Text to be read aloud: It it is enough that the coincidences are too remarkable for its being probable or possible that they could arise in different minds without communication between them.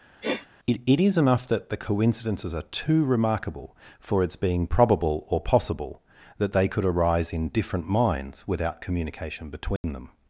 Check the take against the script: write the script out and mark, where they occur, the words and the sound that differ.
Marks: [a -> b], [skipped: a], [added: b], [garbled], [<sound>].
[sniff] It it is enough that the coincidences are too remarkable for its being probable or possible that they could arise in different minds without communication between [dropout] them.